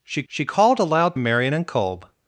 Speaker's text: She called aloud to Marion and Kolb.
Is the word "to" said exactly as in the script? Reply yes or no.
no